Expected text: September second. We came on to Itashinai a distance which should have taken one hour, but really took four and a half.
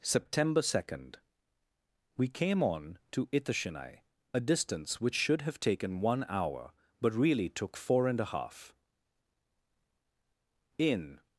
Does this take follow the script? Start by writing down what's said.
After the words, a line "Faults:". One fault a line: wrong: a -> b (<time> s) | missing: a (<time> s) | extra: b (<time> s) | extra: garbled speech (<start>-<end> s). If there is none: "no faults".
September second. We came on to Itashinai a distance which should have taken one hour, but really took four and a half. In
Faults:
extra: In (10.8 s)